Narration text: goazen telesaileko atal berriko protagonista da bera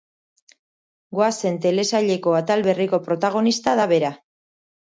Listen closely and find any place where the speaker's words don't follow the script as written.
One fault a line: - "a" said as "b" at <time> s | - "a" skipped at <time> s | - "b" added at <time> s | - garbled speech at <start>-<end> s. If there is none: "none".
none